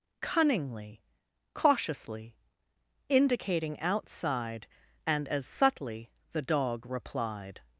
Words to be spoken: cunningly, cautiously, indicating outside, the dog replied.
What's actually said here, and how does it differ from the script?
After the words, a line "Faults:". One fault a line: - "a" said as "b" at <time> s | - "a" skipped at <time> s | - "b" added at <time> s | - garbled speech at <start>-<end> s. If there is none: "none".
cunningly, cautiously, indicating outside, and as subtly the dog replied.
Faults:
- "and as subtly" added at 5.1 s